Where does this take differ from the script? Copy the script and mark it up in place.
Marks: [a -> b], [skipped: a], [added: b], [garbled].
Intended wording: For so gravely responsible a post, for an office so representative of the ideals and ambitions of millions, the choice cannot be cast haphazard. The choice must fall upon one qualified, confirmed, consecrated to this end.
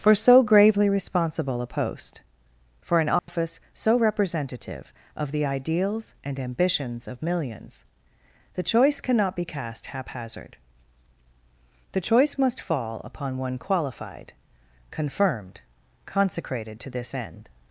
For so gravely responsible a post, for an office so representative of the ideals and ambitions of millions, the choice cannot be cast haphazard. The choice must fall upon one qualified, confirmed, consecrated to this end.